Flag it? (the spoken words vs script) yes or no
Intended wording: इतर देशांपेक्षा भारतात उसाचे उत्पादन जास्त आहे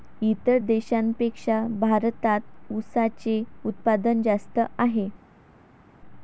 no